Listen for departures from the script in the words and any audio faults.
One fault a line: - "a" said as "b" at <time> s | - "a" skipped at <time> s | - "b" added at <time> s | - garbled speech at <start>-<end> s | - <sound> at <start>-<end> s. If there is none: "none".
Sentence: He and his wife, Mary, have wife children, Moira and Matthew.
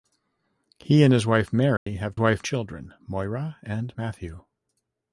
- dropout at 1.8-1.9 s